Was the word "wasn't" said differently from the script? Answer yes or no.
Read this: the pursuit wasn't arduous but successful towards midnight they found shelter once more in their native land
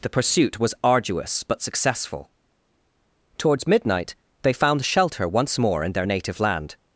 yes